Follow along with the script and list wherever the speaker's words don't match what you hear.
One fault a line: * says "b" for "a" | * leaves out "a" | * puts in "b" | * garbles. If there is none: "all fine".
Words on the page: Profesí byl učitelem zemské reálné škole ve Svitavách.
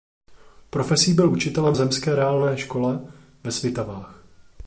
all fine